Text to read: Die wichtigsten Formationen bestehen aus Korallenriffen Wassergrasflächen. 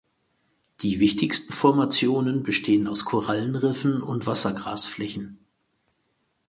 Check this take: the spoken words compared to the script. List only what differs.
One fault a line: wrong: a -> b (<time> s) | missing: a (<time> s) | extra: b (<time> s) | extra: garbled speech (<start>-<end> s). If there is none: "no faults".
extra: und (4.0 s)